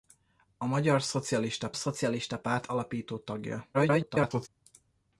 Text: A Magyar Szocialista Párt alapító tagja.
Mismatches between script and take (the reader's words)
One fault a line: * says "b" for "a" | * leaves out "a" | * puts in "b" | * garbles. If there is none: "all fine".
* puts in "Szocialista"
* garbles